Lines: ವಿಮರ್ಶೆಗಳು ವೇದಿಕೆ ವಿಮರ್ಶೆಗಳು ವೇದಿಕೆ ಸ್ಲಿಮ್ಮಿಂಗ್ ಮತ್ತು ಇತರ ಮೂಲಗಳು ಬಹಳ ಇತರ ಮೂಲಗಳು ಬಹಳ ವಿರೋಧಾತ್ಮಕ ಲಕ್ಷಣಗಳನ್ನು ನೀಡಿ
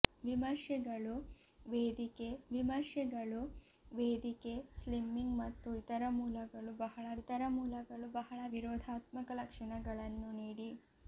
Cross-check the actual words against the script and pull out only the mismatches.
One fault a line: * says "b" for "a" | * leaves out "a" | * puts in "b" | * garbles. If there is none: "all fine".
all fine